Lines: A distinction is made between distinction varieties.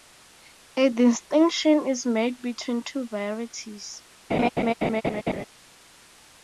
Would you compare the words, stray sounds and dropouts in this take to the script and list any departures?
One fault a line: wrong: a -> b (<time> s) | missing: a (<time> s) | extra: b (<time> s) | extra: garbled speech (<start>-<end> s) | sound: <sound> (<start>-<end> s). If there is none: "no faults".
wrong: distinction -> two (2.8 s)
sound: laugh (4.3-5.5 s)